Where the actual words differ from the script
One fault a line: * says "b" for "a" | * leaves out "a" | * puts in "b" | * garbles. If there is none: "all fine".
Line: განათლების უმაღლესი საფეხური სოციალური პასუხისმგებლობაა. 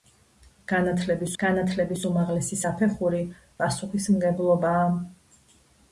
* puts in "განათლების"
* leaves out "სოციალური"